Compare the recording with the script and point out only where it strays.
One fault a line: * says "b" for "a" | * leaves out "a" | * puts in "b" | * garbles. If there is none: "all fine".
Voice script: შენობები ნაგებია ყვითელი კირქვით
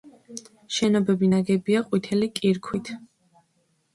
all fine